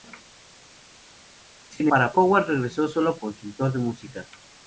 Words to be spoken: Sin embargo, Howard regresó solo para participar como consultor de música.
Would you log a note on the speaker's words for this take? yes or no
yes